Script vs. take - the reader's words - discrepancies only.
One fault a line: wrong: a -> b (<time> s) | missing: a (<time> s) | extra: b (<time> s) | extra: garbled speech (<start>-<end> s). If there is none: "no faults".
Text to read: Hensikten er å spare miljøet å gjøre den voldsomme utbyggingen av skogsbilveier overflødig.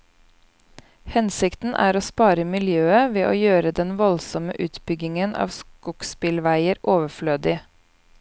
extra: ved (3.2 s)